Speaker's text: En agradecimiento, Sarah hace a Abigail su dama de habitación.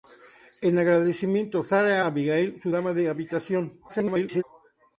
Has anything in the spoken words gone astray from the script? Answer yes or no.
yes